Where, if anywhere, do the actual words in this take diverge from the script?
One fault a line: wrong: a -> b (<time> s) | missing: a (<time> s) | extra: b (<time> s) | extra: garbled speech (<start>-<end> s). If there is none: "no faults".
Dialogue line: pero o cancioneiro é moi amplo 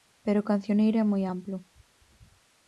no faults